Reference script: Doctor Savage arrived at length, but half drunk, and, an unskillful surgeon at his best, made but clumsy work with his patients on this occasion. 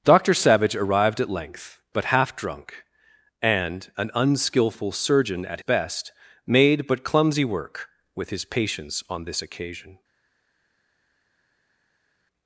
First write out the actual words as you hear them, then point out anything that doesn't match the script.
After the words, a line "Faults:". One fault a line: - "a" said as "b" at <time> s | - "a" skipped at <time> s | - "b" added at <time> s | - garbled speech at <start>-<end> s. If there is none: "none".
Doctor Savage arrived at length, but half drunk, and, an unskillful surgeon at best, made but clumsy work with his patients on this occasion.
Faults:
- "his" skipped at 5.6 s